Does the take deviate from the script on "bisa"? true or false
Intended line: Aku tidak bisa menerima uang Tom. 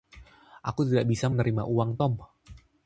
false